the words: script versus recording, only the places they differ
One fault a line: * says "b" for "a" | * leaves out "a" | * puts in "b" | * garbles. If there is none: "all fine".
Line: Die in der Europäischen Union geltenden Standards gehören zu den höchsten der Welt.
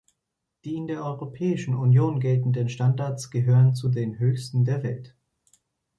all fine